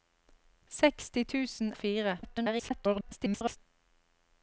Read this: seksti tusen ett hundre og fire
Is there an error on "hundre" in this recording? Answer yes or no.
yes